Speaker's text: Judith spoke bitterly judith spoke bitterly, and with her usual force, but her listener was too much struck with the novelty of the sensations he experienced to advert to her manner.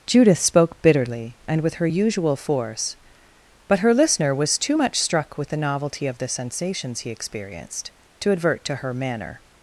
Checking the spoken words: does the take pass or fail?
fail